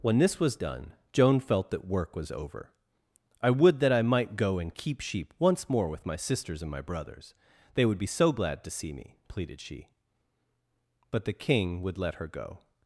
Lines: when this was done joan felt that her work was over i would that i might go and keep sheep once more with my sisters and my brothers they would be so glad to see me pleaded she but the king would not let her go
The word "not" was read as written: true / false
false